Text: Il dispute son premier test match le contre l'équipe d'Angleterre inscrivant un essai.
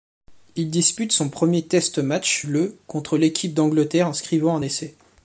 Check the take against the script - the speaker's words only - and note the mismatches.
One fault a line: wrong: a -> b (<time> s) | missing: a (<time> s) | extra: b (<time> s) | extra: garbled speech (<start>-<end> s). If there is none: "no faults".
no faults